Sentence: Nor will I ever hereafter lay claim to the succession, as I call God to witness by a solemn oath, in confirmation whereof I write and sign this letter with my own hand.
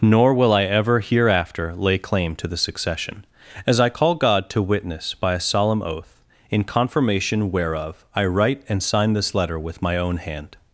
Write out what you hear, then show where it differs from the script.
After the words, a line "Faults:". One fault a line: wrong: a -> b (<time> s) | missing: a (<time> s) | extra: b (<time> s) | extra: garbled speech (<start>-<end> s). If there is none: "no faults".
Nor will I ever hereafter lay claim to the succession, as I call God to witness by a solemn oath, in confirmation whereof I write and sign this letter with my own hand.
Faults:
no faults